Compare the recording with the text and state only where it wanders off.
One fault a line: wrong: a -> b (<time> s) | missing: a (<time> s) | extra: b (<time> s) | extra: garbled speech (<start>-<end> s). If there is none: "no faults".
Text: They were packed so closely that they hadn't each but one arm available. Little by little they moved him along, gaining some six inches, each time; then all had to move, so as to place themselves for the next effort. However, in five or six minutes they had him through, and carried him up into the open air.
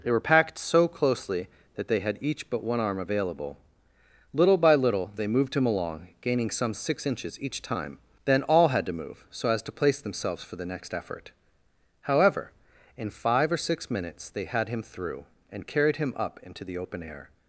wrong: hadn't -> had (2.0 s)